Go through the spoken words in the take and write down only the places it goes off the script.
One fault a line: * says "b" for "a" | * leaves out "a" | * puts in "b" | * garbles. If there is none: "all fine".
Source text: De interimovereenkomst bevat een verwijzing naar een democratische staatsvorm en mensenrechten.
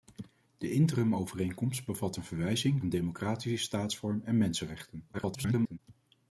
* leaves out "naar"
* garbles